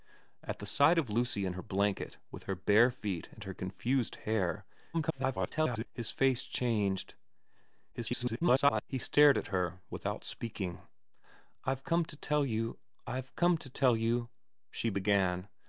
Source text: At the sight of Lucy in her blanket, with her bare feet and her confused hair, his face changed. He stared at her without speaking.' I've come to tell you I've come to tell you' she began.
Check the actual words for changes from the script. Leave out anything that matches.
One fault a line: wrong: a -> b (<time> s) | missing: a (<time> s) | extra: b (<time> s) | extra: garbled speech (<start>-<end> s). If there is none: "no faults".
extra: garbled speech (4.9-5.9 s)
extra: garbled speech (7.9-8.8 s)